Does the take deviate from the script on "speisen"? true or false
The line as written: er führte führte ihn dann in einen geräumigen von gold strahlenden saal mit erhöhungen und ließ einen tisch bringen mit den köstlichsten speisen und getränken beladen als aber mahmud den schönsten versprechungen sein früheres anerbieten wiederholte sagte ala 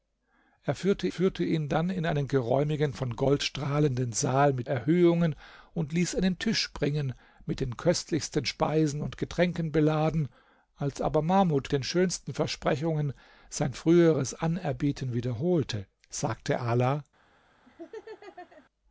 false